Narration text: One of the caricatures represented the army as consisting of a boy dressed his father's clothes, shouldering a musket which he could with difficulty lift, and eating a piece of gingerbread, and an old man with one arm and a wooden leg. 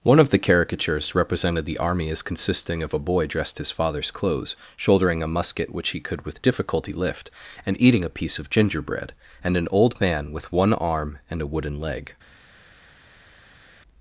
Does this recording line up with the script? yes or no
yes